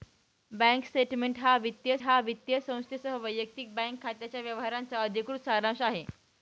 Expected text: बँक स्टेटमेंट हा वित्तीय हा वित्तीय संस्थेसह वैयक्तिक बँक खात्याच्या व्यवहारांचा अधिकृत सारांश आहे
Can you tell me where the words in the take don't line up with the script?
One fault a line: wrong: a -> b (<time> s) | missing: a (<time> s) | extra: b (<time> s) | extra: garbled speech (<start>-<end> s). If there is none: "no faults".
no faults